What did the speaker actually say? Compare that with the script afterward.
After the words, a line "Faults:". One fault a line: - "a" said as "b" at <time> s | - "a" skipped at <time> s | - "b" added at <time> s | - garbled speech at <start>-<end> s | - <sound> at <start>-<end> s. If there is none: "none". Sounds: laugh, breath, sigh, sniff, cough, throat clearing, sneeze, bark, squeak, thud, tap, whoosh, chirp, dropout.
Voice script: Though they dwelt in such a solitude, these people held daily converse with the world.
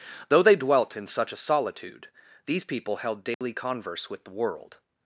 Though they dwelt in such a solitude, these people held daily converse with the world.
Faults:
- dropout at 3.3-3.4 s